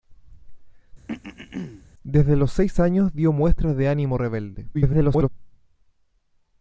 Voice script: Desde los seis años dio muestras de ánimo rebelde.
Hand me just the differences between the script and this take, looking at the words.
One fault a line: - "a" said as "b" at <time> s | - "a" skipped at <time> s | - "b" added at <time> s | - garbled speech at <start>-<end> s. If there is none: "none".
- garbled speech at 4.7-5.3 s